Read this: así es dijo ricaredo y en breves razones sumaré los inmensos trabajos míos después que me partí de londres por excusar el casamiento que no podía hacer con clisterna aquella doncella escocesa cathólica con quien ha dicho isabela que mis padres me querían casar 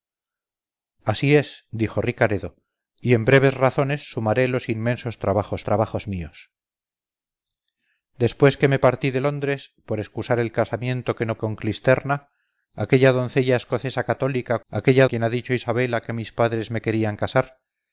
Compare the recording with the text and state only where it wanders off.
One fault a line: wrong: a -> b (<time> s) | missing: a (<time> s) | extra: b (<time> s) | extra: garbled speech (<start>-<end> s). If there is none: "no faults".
extra: trabajos (5.6 s)
missing: podía hacer (11.4 s)
wrong: con -> aquella (14.7 s)